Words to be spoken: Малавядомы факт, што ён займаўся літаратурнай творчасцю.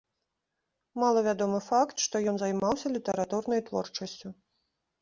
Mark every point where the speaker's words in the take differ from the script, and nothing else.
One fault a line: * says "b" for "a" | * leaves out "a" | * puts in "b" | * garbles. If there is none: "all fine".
all fine